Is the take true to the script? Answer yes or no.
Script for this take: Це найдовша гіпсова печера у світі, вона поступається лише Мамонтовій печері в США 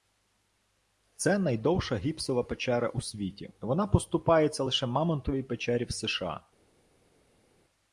yes